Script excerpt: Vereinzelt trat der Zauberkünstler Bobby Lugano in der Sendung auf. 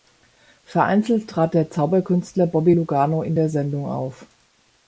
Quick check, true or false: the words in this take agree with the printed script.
true